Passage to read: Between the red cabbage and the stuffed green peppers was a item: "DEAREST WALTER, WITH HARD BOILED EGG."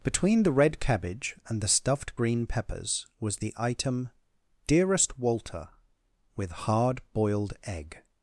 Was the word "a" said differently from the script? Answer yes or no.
yes